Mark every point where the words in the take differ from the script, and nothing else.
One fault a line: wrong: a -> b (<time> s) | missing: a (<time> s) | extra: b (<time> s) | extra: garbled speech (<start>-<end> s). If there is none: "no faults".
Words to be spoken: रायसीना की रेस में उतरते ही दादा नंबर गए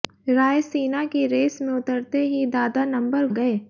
no faults